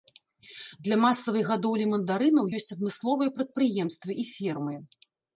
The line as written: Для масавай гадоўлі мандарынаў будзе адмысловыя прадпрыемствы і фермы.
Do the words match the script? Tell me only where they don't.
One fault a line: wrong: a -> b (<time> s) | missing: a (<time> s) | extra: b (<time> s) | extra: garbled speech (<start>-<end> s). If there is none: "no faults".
wrong: будзе -> ёсць (2.6 s)